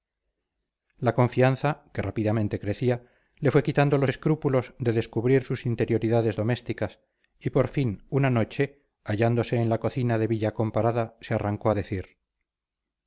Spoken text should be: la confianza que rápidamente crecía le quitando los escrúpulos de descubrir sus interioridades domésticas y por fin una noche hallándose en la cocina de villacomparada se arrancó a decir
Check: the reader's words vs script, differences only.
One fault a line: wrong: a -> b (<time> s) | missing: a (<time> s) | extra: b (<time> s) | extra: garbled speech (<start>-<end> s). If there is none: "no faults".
extra: fue (3.5 s)